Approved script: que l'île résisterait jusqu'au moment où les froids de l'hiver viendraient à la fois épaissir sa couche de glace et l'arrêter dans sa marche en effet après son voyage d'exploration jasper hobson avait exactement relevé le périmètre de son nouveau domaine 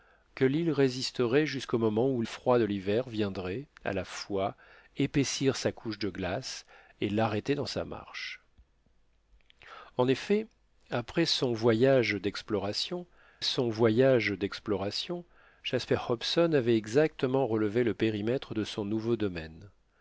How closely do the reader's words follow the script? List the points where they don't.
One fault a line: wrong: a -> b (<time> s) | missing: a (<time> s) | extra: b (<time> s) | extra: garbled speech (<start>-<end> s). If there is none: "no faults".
missing: les (2.2 s)
extra: son voyage d'exploration (13.4 s)